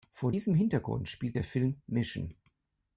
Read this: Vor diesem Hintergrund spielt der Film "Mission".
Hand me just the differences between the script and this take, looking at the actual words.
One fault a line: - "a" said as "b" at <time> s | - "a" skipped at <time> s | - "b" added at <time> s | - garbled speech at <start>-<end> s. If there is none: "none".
none